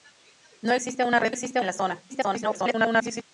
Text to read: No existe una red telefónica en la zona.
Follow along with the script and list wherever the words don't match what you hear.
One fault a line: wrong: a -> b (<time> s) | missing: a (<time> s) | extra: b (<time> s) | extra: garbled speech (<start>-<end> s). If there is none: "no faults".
wrong: telefónica -> existe (1.3 s)
extra: garbled speech (2.1-3.2 s)